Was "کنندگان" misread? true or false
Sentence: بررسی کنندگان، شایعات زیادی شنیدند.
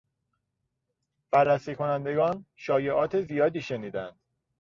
false